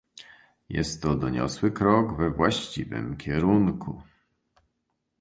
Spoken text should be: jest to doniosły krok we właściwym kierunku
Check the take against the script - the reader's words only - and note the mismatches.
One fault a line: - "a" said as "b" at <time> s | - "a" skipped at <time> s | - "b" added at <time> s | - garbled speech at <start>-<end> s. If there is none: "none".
none